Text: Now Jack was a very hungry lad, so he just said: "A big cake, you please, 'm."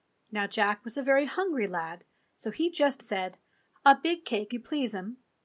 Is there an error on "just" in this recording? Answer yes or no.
no